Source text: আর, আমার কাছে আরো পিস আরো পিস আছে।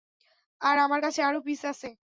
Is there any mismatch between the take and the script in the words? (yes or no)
yes